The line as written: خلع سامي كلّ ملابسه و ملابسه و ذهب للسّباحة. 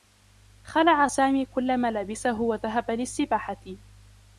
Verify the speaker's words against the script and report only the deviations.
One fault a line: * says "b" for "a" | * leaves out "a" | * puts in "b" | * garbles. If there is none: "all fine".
* leaves out "ملابسه و"